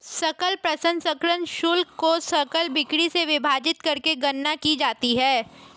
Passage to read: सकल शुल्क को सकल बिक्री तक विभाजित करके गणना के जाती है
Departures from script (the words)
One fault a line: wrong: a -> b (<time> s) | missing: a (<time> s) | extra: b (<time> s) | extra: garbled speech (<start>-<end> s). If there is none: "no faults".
extra: प्रसंस्करण (0.6 s)
wrong: तक -> से (3.1 s)
wrong: के -> की (4.5 s)